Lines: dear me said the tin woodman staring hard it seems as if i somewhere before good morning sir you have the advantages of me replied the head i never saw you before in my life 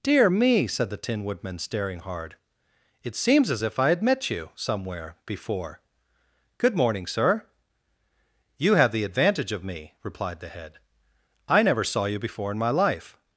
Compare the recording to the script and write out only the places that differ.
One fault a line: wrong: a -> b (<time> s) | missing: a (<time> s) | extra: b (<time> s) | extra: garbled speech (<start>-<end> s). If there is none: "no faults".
extra: had met you (3.9 s)
wrong: advantages -> advantage (9.0 s)